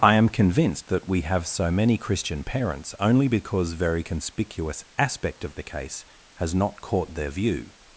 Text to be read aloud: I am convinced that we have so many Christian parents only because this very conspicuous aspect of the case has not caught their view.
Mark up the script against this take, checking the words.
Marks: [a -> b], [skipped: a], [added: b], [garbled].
I am convinced that we have so many Christian parents only because [skipped: this] very conspicuous aspect of the case has not caught their view.